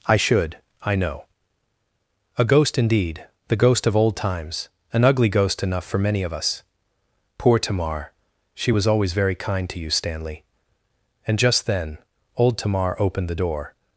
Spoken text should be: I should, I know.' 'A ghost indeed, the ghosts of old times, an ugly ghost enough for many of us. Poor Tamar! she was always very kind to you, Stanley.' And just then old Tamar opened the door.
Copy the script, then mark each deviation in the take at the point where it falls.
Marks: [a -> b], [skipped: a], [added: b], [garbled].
I should, I know.' 'A ghost indeed, the [ghosts -> ghost] of old times, an ugly ghost enough for many of us. Poor Tamar! she was always very kind to you, Stanley.' And just then old Tamar opened the door.